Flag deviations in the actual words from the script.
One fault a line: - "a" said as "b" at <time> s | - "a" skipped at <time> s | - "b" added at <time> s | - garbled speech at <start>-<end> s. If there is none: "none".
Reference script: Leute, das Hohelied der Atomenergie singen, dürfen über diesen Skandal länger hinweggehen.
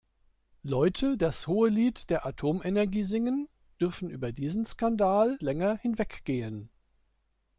none